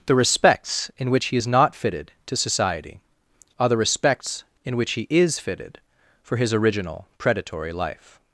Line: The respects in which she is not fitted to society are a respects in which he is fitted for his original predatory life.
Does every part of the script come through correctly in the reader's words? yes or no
no